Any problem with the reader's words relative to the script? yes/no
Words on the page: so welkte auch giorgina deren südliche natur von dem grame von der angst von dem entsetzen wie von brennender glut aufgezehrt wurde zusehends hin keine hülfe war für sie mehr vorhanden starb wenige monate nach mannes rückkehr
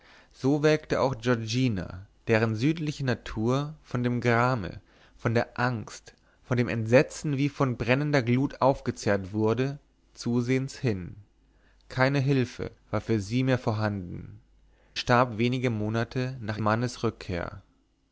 no